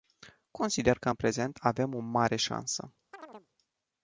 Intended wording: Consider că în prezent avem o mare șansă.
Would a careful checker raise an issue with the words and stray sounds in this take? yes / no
yes